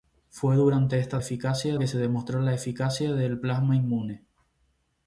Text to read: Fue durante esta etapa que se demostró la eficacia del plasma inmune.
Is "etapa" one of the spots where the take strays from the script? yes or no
yes